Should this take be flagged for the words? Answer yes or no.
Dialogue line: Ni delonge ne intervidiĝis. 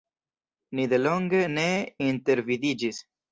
no